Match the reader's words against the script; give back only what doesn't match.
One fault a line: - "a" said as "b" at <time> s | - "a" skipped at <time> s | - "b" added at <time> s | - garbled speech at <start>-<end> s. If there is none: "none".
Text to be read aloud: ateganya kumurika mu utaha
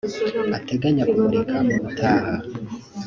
none